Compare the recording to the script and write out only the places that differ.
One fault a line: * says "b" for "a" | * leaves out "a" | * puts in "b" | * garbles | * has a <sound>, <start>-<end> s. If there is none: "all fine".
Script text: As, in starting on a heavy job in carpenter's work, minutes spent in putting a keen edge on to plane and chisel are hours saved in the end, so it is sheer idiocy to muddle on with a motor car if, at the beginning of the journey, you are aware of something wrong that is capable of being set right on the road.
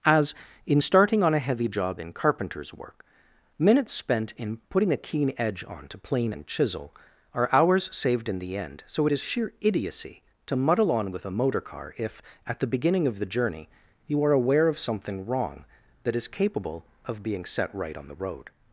all fine